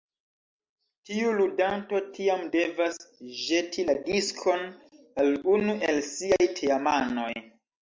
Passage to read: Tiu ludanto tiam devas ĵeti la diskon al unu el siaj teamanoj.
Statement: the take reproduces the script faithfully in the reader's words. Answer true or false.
true